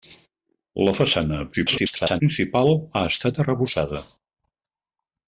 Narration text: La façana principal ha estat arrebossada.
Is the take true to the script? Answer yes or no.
no